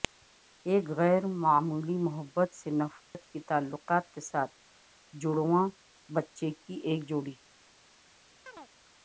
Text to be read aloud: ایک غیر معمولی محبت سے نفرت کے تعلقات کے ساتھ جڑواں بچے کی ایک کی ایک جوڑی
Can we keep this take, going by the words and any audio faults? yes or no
no